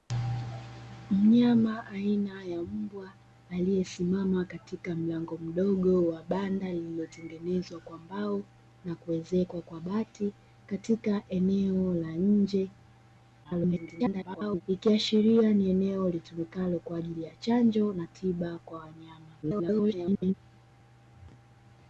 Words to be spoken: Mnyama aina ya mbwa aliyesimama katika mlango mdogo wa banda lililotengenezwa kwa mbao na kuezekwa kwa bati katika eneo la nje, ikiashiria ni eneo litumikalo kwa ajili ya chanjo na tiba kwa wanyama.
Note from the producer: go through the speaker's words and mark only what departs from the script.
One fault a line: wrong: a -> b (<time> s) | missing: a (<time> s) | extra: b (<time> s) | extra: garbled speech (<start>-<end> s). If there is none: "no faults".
extra: garbled speech (13.4-14.6 s)
extra: garbled speech (19.4-20.3 s)